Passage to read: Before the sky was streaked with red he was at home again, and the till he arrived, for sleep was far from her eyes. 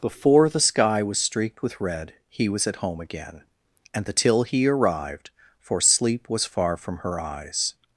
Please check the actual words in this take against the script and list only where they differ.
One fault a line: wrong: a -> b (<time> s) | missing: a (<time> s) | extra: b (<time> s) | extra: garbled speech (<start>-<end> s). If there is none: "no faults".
no faults